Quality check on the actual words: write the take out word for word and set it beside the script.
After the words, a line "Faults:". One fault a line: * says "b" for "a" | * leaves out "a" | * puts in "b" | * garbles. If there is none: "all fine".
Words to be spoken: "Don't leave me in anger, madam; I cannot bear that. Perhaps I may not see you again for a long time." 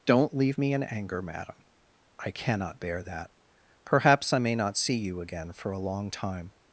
"Don't leave me in anger, madam; I cannot bear that. Perhaps I may not see you again for a long time."
Faults:
all fine